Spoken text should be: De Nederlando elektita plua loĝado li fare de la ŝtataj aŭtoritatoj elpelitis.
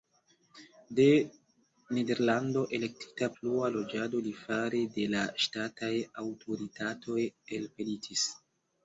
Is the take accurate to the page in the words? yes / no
yes